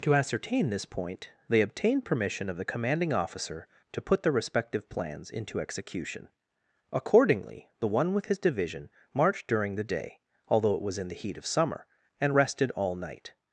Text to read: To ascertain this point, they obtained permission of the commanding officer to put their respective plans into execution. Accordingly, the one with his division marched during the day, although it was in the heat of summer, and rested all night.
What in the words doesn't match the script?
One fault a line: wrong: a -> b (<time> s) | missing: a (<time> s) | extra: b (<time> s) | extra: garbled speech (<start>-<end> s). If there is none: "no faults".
no faults